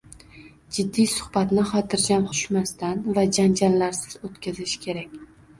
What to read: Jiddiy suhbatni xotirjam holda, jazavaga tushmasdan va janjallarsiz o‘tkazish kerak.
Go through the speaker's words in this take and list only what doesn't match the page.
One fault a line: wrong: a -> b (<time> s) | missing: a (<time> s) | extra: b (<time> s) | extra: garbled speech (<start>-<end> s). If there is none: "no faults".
missing: holda jazavaga (2.2 s)